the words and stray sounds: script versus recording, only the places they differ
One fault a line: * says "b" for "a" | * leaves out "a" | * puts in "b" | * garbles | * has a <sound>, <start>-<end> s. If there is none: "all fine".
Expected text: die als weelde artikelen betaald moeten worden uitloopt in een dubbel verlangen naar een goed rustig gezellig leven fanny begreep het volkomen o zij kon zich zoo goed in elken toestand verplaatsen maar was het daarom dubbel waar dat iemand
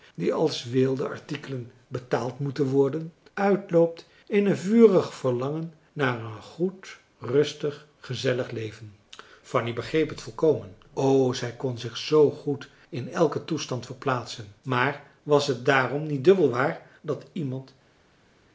* says "vurig" for "dubbel"
* puts in "niet"